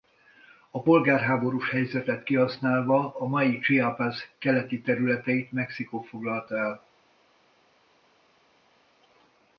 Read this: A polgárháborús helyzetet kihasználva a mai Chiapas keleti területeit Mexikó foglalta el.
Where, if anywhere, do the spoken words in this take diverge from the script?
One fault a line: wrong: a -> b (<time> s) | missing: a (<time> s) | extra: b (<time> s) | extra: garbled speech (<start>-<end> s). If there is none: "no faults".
no faults